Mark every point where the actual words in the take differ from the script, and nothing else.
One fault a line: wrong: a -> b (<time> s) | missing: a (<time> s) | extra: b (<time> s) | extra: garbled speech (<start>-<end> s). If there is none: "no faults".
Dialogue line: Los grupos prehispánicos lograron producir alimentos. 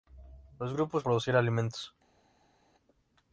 missing: prehispánicos lograron (1.0 s)